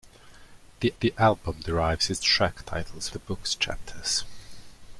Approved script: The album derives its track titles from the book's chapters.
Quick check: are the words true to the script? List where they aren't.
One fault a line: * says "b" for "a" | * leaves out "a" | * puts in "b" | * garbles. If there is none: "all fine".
* puts in "the"
* leaves out "from"